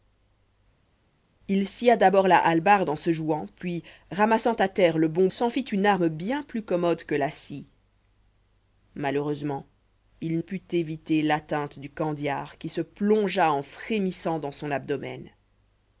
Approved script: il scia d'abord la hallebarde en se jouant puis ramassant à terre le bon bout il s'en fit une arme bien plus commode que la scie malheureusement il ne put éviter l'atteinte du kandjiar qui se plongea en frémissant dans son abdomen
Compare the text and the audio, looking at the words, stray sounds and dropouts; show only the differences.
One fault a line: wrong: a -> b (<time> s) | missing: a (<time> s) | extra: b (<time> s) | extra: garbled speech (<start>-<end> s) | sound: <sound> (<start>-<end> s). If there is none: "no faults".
missing: bout il (5.3 s)
missing: ne (10.4 s)